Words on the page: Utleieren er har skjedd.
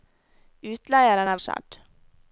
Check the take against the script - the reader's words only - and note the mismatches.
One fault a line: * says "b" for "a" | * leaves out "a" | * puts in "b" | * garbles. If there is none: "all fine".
all fine